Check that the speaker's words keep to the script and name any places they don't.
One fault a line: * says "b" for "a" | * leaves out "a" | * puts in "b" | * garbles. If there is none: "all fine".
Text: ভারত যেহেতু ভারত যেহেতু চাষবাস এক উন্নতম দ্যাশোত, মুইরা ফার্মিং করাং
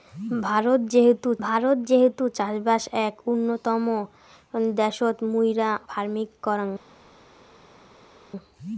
all fine